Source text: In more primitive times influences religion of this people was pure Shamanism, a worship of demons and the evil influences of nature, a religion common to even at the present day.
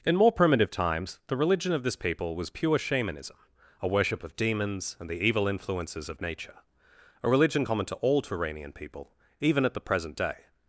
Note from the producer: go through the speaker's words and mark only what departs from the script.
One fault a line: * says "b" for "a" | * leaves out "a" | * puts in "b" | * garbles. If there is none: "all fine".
* says "the" for "influences"
* puts in "all Turanian people"